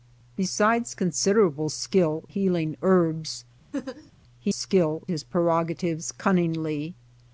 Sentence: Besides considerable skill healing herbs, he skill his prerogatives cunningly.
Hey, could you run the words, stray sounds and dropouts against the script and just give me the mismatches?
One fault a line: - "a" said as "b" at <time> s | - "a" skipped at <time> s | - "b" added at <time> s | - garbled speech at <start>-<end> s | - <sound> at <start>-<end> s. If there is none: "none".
- laugh at 3.7-4.1 s